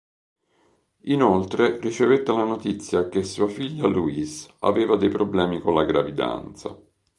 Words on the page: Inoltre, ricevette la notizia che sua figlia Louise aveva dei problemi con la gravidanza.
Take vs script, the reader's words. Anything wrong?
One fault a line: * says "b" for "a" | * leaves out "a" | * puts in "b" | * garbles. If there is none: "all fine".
all fine